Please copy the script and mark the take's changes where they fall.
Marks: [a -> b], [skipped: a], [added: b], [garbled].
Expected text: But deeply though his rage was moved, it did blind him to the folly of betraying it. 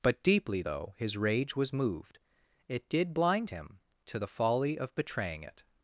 But deeply though his rage was moved, it did blind him to the folly of betraying it.